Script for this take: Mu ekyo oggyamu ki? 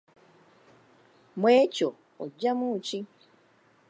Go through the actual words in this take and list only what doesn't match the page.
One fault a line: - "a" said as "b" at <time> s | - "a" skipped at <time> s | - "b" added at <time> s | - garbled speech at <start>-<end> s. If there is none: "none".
none